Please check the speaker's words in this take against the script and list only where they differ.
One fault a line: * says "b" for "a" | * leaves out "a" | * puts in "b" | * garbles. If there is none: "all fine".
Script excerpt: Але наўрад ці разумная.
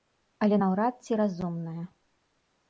all fine